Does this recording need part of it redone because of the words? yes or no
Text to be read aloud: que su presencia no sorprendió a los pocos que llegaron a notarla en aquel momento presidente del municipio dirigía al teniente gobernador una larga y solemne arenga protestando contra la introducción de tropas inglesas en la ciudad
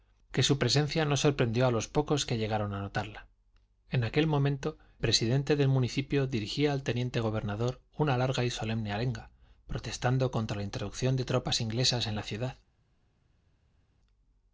no